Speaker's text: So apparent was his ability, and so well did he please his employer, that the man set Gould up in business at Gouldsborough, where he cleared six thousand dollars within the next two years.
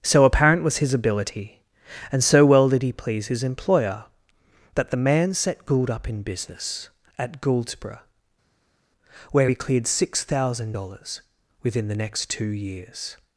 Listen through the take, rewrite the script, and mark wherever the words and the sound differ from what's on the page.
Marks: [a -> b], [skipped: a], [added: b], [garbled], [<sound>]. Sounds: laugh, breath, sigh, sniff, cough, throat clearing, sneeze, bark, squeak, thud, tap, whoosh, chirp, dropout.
So apparent was his ability, and so well did he please his employer, that the man set Gould up in business at Gouldsborough, where he cleared six thousand dollars within the next two years.